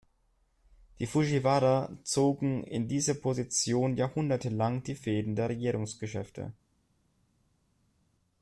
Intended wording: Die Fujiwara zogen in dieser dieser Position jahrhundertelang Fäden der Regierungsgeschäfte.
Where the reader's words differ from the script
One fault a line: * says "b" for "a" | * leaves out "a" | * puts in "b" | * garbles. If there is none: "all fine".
* leaves out "dieser"
* puts in "die"